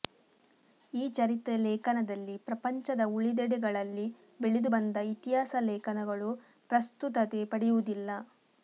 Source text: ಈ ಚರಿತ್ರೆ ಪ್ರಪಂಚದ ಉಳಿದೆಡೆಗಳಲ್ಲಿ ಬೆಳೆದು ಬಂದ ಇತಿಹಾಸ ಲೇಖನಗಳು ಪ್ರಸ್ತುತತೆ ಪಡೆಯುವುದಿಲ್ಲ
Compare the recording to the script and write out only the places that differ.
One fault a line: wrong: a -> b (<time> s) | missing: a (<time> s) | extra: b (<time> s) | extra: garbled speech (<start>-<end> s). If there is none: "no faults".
extra: ಲೇಖನದಲ್ಲಿ (1.6 s)